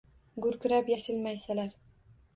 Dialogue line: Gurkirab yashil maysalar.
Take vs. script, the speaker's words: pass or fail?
pass